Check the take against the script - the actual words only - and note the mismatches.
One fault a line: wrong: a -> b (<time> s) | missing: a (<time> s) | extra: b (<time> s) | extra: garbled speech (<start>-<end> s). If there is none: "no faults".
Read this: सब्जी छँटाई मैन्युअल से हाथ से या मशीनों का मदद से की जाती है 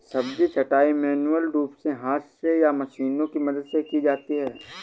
extra: रूप (1.5 s)
wrong: का -> की (3.3 s)